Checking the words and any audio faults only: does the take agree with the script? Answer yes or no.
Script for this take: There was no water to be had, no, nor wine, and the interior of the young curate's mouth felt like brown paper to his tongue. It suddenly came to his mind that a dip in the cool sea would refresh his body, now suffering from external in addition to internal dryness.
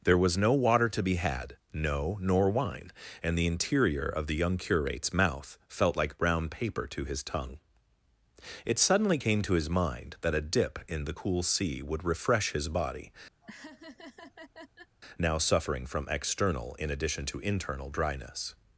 no